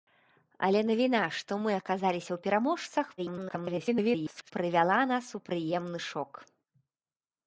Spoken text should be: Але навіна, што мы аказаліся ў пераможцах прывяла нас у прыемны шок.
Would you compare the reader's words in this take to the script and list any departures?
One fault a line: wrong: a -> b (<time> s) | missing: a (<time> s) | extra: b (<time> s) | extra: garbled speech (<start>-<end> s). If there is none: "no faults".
extra: garbled speech (3.2-4.5 s)